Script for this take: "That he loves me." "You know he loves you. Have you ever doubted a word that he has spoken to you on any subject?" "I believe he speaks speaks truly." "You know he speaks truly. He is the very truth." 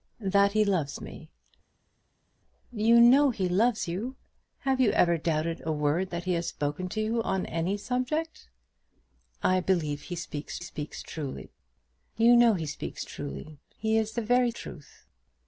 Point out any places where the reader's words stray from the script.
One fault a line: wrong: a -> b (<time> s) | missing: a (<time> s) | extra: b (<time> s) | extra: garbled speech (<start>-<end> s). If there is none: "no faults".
no faults